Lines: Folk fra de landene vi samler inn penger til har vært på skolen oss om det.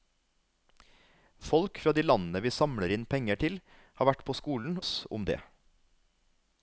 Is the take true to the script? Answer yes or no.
yes